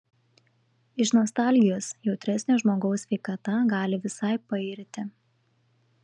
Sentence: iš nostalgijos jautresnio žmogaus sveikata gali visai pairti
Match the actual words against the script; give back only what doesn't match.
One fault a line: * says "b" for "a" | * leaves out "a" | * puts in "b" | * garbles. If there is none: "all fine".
all fine